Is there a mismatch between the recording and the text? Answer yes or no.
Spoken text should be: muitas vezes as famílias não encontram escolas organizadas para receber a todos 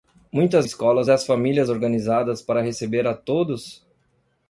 yes